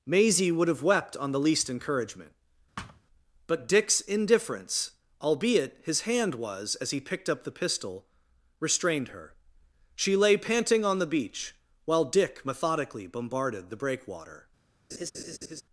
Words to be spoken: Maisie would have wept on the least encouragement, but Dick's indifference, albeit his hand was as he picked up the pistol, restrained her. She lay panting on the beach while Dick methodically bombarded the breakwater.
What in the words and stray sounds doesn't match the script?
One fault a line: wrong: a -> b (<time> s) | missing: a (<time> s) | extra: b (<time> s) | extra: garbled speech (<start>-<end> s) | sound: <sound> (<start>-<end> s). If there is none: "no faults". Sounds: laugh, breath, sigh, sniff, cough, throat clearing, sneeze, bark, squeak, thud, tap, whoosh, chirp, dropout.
sound: thud (2.8-3.0 s)
sound: laugh (14.9-15.6 s)